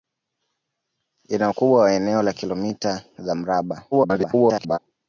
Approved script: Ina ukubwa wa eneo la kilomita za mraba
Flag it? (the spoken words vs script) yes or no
yes